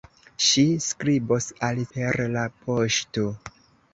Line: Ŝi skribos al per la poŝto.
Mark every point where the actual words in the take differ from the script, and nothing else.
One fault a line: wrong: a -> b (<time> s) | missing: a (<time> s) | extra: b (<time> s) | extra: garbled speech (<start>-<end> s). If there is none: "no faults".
no faults